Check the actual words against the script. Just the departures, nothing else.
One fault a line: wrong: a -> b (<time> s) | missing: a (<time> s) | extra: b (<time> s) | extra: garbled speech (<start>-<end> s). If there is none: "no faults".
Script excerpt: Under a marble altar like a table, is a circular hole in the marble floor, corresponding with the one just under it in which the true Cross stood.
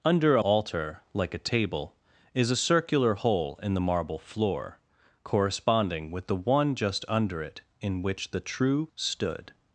missing: marble (0.4 s)
missing: Cross (8.9 s)